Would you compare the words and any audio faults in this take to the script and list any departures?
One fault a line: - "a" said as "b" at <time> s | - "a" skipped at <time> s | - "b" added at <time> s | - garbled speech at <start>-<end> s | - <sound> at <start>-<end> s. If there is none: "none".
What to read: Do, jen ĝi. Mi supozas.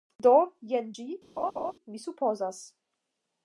- laugh at 1.4-1.7 s